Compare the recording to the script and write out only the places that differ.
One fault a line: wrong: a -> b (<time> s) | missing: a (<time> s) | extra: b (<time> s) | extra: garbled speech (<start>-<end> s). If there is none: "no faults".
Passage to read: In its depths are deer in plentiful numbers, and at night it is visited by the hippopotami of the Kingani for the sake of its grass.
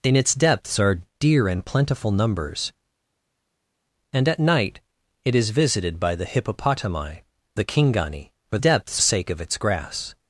missing: of (7.2 s)
wrong: the -> depths (8.6 s)